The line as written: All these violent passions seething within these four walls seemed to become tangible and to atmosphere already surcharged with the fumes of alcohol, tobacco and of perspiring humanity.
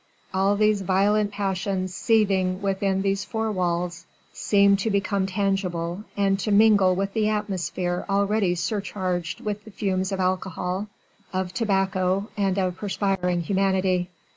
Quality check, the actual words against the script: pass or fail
fail